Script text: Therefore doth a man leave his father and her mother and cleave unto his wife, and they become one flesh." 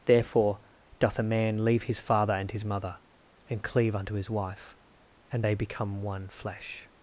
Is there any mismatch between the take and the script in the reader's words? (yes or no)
yes